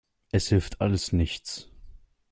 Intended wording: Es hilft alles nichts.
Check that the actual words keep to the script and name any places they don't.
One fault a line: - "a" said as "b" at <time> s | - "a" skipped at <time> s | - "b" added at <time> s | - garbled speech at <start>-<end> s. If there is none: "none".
none